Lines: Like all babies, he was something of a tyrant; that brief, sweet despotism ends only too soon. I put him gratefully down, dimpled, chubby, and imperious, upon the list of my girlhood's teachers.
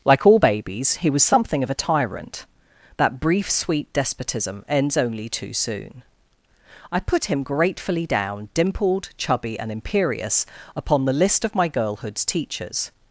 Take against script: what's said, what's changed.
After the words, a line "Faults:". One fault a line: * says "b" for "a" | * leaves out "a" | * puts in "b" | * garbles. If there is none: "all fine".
Like all babies, he was something of a tyrant; that brief, sweet despotism ends only too soon. I put him gratefully down, dimpled, chubby, and imperious, upon the list of my girlhood's teachers.
Faults:
all fine